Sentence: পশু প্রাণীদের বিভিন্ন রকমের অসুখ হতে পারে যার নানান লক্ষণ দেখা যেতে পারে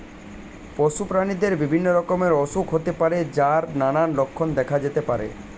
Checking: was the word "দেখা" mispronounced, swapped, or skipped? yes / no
no